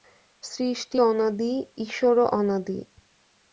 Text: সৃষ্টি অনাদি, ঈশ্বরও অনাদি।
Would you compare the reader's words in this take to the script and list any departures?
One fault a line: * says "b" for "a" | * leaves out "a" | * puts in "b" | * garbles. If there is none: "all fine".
all fine